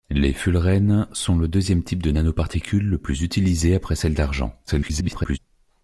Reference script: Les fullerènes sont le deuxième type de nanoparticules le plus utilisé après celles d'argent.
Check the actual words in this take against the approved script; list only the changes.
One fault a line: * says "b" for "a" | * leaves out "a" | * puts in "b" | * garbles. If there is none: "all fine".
* garbles